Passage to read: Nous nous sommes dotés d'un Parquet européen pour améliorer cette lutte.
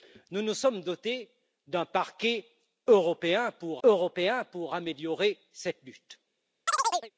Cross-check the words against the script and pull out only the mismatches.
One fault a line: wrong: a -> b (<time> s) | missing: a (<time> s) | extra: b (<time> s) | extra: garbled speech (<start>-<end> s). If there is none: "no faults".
extra: européen pour (3.8 s)